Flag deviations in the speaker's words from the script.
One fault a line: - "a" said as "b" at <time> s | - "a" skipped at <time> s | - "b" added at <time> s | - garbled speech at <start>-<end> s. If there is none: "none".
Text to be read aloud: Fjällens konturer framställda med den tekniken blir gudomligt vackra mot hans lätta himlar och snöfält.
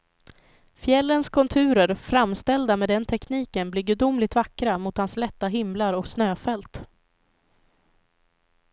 none